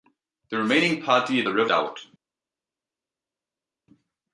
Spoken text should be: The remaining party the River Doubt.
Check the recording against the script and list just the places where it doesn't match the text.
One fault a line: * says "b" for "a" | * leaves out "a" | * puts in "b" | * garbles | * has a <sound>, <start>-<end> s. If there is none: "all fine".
all fine